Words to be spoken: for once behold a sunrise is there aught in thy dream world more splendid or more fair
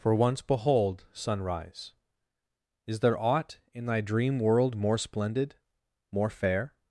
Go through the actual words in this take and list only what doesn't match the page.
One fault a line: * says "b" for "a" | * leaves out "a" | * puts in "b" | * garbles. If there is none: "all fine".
* leaves out "a"
* leaves out "or"